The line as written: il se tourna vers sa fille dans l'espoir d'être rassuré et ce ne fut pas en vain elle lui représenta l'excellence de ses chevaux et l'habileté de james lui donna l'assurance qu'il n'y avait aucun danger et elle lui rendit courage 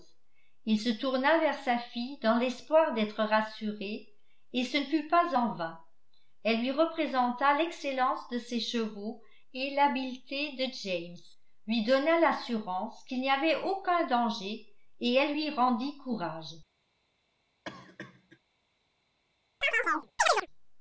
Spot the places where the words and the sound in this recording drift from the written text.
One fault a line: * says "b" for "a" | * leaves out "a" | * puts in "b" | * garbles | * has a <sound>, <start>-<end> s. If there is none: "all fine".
* has a cough, 17.7-18.4 s
* has a chirp, 19.6-20.5 s